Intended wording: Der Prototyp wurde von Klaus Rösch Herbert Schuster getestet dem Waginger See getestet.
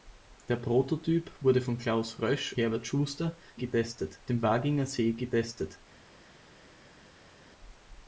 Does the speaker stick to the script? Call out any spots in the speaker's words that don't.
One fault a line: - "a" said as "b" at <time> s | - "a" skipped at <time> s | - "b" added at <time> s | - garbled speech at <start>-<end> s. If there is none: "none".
none